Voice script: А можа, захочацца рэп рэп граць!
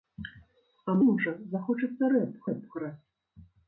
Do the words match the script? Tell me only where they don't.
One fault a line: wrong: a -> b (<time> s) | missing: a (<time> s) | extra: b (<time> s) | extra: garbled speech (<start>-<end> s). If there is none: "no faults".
no faults